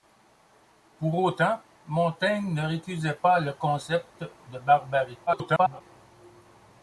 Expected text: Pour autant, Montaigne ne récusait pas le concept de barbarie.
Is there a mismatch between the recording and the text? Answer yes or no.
yes